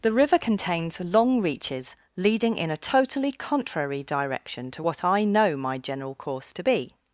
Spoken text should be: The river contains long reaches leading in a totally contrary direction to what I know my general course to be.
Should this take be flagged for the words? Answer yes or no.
no